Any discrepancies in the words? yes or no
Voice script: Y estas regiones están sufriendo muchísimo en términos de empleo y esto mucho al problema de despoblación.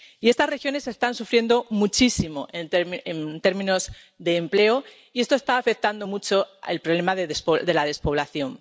yes